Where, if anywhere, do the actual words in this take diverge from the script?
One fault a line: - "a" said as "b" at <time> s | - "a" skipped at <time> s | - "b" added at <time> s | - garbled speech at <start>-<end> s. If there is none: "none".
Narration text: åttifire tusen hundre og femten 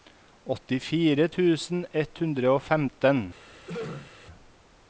- "ett" added at 2.0 s